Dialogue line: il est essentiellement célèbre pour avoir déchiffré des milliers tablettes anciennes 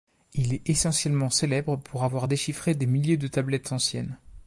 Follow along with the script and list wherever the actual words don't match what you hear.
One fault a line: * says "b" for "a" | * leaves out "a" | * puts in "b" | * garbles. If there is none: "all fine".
* puts in "de"